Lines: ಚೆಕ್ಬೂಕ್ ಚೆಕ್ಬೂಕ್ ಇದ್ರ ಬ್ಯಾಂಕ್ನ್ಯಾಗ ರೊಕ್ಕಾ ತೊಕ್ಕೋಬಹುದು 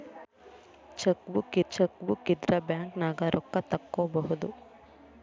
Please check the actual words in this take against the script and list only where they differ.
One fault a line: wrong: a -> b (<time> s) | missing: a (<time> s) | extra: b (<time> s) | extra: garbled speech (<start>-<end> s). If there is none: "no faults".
no faults